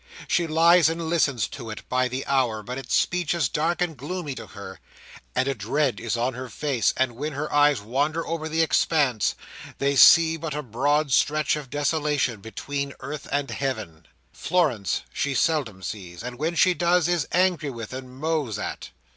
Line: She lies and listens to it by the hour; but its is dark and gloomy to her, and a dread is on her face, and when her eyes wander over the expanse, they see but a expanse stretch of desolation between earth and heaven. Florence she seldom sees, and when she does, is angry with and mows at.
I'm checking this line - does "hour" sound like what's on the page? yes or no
yes